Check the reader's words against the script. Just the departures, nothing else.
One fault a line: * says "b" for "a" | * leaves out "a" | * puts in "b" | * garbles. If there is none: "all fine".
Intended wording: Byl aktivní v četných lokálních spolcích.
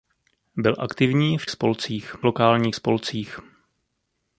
* says "spolcích" for "četných"